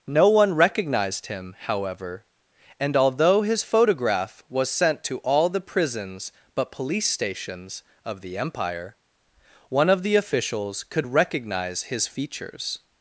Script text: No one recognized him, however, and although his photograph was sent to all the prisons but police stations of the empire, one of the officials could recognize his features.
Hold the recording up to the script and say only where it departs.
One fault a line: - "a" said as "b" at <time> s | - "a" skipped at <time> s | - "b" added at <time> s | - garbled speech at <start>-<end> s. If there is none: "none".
none